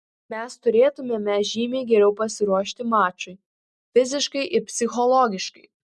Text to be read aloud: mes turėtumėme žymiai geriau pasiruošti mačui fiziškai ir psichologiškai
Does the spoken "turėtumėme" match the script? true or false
true